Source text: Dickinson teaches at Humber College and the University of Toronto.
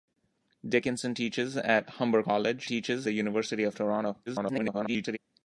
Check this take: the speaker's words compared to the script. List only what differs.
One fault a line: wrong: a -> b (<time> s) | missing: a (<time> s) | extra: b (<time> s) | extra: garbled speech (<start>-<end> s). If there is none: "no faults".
wrong: and -> teaches (2.6 s)
extra: garbled speech (4.3-5.2 s)